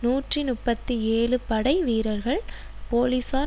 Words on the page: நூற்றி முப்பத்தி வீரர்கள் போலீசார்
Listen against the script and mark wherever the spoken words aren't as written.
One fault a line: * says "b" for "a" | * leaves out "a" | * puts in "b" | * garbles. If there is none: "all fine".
* puts in "ஏழு படை"